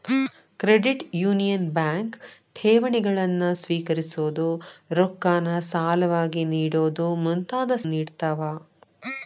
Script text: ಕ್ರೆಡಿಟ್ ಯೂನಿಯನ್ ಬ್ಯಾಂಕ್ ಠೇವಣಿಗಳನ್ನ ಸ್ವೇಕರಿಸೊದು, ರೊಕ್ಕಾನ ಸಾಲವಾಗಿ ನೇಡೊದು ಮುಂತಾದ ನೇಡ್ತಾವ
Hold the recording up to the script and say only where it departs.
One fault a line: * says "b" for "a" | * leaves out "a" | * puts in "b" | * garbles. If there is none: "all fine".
all fine